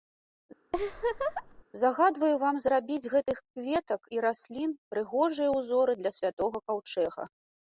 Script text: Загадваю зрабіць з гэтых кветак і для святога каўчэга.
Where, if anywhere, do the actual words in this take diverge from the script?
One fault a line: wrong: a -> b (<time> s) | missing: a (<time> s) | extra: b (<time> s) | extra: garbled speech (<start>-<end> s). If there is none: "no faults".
extra: вам (2.4 s)
extra: раслін прыгожыя ўзоры (4.3 s)